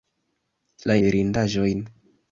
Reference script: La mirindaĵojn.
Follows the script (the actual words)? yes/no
yes